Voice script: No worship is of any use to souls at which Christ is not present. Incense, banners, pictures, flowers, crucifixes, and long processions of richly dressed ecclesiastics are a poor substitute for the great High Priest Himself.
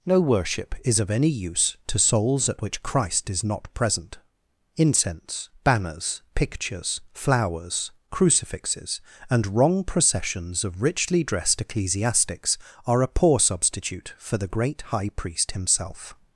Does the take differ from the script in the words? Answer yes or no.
yes